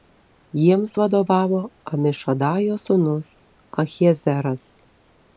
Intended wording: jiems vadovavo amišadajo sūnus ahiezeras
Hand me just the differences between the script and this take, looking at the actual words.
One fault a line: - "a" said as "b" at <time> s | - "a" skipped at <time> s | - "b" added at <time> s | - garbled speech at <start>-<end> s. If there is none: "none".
none